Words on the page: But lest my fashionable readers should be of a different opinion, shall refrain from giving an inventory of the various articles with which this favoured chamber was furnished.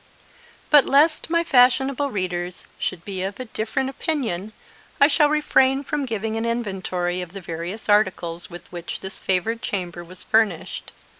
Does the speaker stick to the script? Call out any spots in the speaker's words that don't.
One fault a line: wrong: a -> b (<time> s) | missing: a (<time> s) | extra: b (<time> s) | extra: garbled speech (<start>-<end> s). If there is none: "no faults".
extra: I (5.0 s)